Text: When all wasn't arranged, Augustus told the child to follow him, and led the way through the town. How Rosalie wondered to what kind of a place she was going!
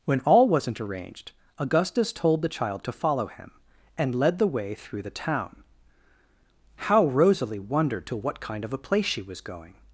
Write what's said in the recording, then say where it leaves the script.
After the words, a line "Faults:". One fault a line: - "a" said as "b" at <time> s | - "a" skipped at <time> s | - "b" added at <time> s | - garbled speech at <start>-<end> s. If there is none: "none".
When all wasn't arranged, Augustus told the child to follow him, and led the way through the town. How Rosalie wondered to what kind of a place she was going!
Faults:
none